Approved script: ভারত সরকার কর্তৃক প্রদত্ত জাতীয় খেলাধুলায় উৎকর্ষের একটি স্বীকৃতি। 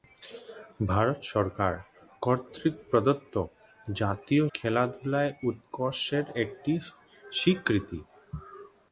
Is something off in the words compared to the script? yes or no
no